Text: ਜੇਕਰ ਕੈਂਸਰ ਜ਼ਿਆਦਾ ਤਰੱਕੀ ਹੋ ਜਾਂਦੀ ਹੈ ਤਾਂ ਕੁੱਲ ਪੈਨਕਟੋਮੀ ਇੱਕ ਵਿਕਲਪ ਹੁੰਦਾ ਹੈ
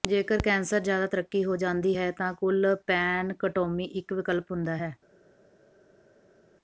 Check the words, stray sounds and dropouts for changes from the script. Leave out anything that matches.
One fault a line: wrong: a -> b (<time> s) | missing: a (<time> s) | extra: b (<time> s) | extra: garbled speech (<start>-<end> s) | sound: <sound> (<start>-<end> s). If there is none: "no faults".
no faults